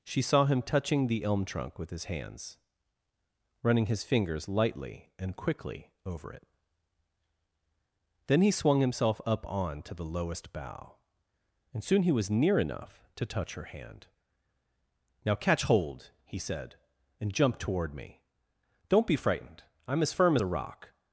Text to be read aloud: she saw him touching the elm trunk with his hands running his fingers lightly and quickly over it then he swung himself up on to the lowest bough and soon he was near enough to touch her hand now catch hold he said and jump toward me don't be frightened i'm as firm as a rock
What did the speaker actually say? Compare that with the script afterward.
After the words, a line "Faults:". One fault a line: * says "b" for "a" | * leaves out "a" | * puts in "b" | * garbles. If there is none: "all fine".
she saw him touching the elm trunk with his hands running his fingers lightly and quickly over it then he swung himself up on to the lowest bough and soon he was near enough to touch her hand now catch hold he said and jump toward me don't be frightened i'm as firm as a rock
Faults:
all fine